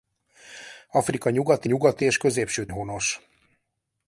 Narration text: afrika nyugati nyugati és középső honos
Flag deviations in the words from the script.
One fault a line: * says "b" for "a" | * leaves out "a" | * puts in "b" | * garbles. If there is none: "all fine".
all fine